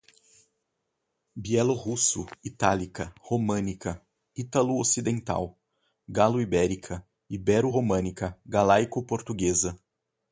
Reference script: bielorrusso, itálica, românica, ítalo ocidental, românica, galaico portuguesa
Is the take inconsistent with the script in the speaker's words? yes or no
yes